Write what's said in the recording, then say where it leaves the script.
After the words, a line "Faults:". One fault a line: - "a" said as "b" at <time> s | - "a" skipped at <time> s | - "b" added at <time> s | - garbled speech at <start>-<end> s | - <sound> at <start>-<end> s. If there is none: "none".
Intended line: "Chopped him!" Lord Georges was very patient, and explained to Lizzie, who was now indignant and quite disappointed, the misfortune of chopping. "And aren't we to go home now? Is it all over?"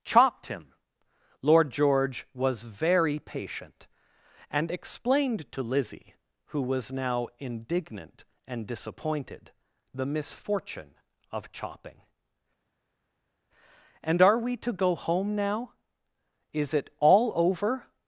"Chopped him!" Lord George was very patient, and explained to Lizzie, who was now indignant and disappointed, the misfortune of chopping. "And are we to go home now? Is it all over?"
Faults:
- "Georges" said as "George" at 1.7 s
- "quite" skipped at 8.7 s
- "aren't" said as "are" at 14.2 s